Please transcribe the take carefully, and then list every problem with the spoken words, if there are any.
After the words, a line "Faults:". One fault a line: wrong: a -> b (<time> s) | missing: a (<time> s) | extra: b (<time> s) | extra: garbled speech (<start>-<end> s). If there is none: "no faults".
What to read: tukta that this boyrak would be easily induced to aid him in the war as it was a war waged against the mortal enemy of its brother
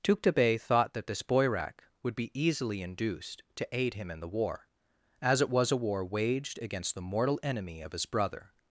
tukta bey thought that this boyrak would be easily induced to aid him in the war as it was a war waged against the mortal enemy of his brother
Faults:
extra: bey thought (0.3 s)
wrong: its -> his (7.9 s)